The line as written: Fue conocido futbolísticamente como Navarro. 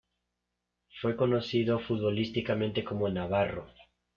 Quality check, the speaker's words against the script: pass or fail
pass